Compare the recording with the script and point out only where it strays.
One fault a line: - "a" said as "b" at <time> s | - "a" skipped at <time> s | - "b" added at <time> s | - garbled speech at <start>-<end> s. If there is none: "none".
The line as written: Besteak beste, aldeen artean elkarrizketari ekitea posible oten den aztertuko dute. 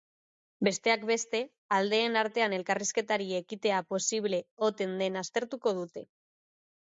none